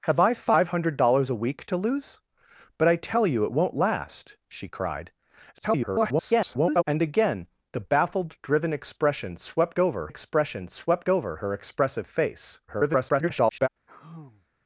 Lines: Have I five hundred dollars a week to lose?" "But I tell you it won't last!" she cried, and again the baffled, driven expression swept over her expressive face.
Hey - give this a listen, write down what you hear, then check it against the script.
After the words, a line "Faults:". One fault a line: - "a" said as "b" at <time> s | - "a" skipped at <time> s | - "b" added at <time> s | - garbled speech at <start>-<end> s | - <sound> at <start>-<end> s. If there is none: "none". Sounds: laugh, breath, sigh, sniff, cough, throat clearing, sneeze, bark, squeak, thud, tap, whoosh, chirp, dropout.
Have I five hundred dollars a week to lose?" "But I tell you it won't last!" she cried, [garbled] and again the baffled, driven expression swept over expression swept over her expressive face. [garbled]
Faults:
- garbled speech at 5.5-6.8 s
- "expression swept over" added at 10.1 s
- garbled speech at 12.7-13.7 s
- sigh at 13.9-14.5 s